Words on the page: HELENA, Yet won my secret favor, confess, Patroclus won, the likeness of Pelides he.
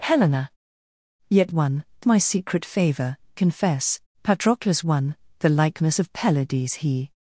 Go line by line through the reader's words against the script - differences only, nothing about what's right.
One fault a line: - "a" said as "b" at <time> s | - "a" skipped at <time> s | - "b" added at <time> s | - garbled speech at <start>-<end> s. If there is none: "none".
none